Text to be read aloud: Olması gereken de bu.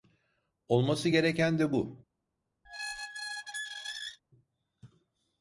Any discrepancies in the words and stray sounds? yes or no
yes